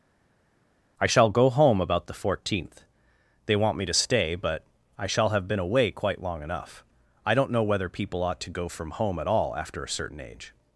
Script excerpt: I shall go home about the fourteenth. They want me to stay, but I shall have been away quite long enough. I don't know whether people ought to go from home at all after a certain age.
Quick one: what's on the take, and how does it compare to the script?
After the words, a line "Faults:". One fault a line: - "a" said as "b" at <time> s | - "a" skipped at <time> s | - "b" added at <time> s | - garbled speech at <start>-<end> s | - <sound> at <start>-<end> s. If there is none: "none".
I shall go home about the fourteenth. They want me to stay, but I shall have been away quite long enough. I don't know whether people ought to go from home at all after a certain age.
Faults:
none